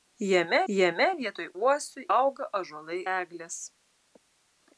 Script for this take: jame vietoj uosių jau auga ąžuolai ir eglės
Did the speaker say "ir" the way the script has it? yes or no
no